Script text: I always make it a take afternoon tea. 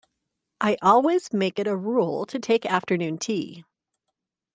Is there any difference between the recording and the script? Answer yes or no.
yes